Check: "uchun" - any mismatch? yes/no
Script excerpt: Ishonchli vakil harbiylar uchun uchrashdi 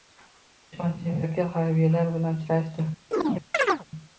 yes